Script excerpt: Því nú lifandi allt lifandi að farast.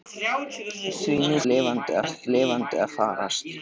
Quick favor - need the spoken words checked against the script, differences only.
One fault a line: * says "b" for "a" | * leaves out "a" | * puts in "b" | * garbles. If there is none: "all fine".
all fine